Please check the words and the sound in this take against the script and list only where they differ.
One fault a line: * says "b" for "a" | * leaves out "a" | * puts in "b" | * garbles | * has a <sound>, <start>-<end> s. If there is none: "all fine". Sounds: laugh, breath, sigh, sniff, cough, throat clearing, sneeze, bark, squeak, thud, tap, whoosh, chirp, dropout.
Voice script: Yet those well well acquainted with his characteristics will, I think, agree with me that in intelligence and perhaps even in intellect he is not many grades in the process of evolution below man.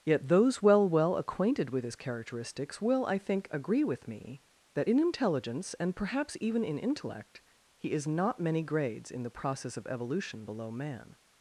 all fine